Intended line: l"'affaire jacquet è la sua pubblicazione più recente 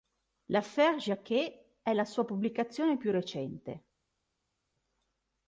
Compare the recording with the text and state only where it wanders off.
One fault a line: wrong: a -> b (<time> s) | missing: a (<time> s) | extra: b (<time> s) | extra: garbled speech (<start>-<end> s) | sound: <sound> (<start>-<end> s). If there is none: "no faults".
no faults